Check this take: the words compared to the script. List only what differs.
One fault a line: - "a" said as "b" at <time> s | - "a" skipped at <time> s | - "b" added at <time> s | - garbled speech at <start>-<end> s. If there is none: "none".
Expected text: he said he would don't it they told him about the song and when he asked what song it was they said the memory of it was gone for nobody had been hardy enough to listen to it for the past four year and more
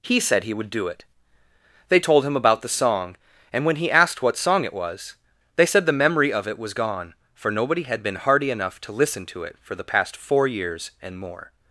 - "don't" said as "do" at 0.7 s
- "year" said as "years" at 10.5 s